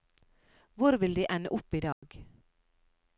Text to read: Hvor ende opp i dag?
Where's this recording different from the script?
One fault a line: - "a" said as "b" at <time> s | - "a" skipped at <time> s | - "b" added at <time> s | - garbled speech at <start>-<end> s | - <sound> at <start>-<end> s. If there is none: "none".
- "vil de" added at 1.0 s
- dropout at 1.9-2.0 s